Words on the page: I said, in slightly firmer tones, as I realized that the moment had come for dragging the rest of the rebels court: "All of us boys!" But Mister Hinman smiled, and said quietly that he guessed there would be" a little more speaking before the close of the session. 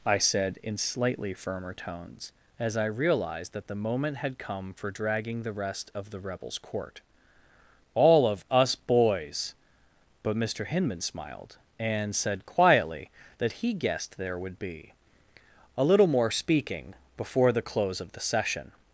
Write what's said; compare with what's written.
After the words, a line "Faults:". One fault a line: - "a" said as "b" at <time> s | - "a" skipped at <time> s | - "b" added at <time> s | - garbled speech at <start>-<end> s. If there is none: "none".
I said, in slightly firmer tones, as I realized that the moment had come for dragging the rest of the rebels court: "All of us boys!" But Mister Hinman smiled, and said quietly that he guessed there would be" a little more speaking before the close of the session.
Faults:
none